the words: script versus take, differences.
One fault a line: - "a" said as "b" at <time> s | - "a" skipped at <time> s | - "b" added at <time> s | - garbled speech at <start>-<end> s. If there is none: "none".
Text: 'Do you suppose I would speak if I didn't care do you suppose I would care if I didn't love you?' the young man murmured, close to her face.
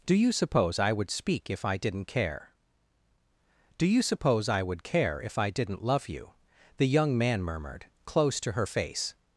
none